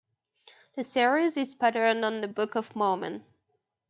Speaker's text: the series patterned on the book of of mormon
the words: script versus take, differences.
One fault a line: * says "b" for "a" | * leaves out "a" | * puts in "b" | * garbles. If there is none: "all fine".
* puts in "is"
* leaves out "of"